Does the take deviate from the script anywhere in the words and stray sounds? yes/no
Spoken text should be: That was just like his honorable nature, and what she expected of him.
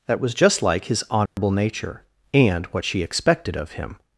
yes